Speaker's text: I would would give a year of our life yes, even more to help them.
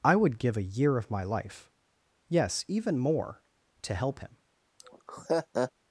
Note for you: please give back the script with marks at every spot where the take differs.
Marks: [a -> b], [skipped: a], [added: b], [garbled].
I would [skipped: would] give a year of [our -> my] life yes, even more to help [them. -> him]